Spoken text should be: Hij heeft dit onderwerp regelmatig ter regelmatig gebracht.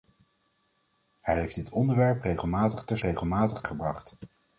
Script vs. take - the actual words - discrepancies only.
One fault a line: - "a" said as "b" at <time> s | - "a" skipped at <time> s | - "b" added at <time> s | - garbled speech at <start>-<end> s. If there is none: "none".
none